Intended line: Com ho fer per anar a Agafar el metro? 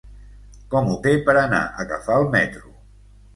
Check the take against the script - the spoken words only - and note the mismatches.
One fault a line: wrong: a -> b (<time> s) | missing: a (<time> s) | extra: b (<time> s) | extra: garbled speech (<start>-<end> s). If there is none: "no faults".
no faults